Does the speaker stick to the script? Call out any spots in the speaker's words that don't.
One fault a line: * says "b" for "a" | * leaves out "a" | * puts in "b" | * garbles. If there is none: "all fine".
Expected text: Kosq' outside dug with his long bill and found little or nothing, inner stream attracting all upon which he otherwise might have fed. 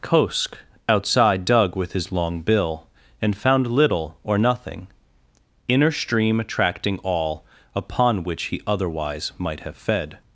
all fine